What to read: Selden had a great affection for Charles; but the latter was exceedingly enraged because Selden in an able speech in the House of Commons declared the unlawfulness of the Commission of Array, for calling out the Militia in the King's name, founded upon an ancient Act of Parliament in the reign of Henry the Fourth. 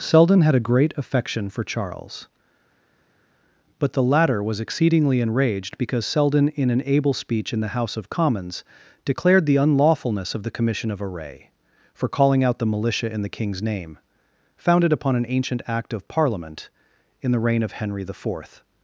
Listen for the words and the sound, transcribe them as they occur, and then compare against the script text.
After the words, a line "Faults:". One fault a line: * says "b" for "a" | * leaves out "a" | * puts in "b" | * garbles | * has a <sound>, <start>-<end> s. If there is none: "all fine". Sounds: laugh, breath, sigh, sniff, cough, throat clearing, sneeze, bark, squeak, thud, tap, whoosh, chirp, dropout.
Selden had a great affection for Charles; but the latter was exceedingly enraged because Selden in an able speech in the House of Commons declared the unlawfulness of the Commission of Array, for calling out the Militia in the King's name, founded upon an ancient Act of Parliament in the reign of Henry the Fourth.
Faults:
all fine